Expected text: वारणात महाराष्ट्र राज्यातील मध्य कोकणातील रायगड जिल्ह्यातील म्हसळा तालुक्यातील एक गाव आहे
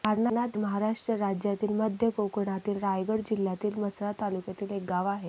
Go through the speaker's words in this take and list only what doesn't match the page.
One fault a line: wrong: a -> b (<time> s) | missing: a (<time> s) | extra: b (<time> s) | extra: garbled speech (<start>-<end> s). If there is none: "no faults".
no faults